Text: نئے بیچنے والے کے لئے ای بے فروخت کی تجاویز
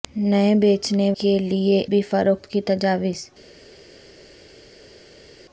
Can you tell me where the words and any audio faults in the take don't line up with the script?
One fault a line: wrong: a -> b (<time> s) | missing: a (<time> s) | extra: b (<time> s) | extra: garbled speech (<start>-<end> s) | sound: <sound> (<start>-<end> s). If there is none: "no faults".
missing: والے (1.1 s)
missing: ای (1.8 s)